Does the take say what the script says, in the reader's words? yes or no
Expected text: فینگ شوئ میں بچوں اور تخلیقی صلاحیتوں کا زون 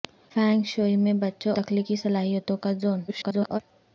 no